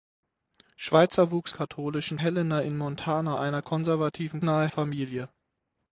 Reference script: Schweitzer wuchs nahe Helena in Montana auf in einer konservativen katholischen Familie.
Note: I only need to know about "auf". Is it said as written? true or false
false